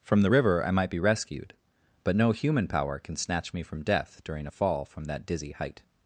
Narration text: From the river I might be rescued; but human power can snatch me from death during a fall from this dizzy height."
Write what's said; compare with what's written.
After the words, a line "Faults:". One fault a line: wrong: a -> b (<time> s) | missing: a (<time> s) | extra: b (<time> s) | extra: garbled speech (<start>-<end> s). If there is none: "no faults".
From the river I might be rescued; but no human power can snatch me from death during a fall from that dizzy height."
Faults:
extra: no (2.1 s)
wrong: this -> that (5.0 s)